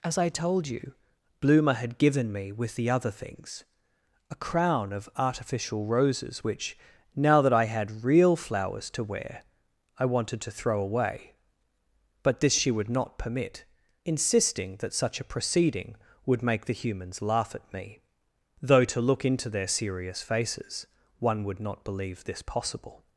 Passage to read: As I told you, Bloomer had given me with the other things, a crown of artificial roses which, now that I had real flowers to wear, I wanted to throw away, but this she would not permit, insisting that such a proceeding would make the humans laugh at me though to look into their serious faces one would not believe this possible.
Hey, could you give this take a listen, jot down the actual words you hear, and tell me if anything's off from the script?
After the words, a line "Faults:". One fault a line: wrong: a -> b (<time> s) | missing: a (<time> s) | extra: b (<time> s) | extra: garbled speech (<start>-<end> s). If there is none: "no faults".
As I told you, Bloomer had given me with the other things, a crown of artificial roses which, now that I had real flowers to wear, I wanted to throw away, but this she would not permit, insisting that such a proceeding would make the humans laugh at me though to look into their serious faces one would not believe this possible.
Faults:
no faults